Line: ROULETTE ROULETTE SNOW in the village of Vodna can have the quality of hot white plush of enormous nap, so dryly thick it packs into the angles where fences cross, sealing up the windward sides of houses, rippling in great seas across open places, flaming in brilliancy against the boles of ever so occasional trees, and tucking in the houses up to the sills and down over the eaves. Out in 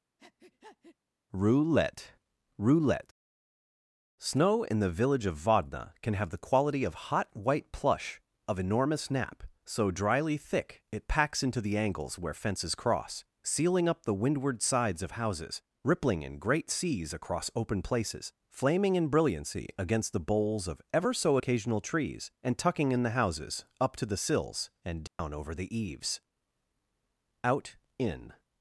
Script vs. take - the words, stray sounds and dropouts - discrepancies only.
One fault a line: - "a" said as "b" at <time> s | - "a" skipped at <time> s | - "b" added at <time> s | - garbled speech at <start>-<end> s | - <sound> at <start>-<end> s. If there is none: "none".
- breath at 0.2-1.0 s
- dropout at 25.1-25.2 s